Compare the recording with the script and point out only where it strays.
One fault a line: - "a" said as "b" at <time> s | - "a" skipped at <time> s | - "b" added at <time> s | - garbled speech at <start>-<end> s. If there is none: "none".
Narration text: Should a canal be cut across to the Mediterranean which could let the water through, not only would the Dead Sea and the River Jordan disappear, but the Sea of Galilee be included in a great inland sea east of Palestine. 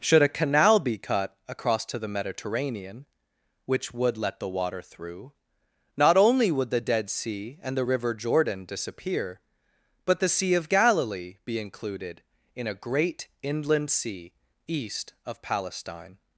- "could" said as "would" at 3.9 s